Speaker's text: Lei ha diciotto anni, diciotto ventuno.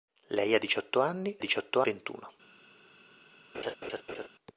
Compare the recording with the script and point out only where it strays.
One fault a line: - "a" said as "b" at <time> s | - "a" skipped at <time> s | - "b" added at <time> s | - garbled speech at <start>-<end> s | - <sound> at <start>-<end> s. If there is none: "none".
- laugh at 3.5-4.3 s